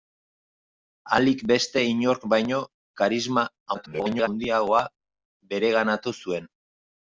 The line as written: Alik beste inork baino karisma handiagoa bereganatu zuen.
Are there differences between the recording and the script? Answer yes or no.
yes